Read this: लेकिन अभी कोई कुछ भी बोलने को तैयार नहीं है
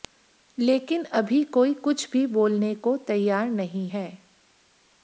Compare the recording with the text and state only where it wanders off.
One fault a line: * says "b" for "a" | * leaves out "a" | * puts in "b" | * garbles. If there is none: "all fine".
all fine